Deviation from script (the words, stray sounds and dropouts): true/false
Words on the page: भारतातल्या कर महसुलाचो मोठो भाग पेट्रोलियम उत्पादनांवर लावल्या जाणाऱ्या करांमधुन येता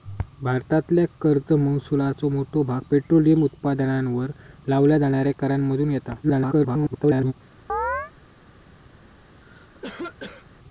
true